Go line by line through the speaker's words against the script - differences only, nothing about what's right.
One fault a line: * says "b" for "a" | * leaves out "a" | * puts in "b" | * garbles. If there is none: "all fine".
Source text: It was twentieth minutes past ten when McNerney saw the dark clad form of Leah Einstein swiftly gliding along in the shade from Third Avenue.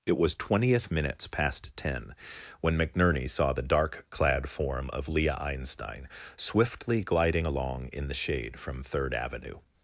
all fine